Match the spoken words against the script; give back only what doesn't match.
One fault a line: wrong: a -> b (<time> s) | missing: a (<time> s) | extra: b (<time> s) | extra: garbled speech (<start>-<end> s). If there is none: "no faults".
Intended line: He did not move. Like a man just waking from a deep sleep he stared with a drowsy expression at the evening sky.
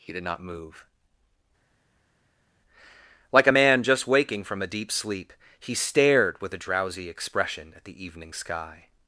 no faults